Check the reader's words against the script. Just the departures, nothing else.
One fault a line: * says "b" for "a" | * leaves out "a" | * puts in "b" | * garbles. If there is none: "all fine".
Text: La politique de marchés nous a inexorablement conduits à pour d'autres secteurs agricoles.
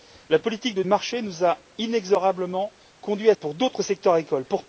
all fine